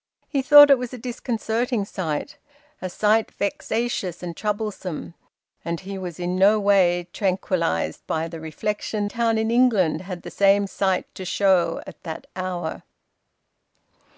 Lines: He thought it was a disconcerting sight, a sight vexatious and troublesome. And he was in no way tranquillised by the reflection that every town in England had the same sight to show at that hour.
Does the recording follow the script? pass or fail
fail